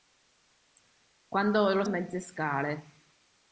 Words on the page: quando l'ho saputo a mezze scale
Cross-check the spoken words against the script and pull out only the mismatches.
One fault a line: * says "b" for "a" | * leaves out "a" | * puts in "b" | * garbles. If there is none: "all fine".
* leaves out "saputo"